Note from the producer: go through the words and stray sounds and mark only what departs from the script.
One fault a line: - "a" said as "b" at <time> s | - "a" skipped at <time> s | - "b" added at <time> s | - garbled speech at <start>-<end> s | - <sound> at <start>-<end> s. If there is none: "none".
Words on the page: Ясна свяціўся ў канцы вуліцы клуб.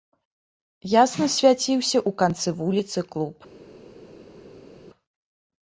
none